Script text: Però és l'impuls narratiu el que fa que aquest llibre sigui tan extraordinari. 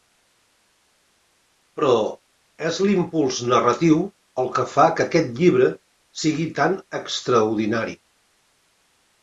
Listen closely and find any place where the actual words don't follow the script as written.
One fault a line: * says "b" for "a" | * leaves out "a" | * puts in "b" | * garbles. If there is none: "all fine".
all fine